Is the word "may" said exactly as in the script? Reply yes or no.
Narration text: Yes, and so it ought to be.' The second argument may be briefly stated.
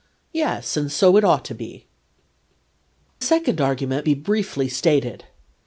no